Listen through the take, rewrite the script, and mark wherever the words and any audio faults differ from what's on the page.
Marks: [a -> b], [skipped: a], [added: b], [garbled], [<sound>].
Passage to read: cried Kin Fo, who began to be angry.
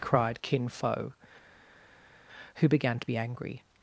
cried Kin Fo, who began to be angry.